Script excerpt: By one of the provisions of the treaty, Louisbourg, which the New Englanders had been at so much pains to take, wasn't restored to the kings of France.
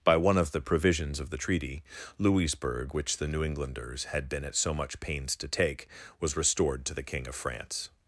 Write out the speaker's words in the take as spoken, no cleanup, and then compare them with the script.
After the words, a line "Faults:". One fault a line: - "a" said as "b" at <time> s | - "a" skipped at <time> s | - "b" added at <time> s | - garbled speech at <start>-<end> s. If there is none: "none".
By one of the provisions of the treaty, Louisbourg, which the New Englanders had been at so much pains to take, was restored to the king of France.
Faults:
- "wasn't" said as "was" at 6.2 s
- "kings" said as "king" at 7.0 s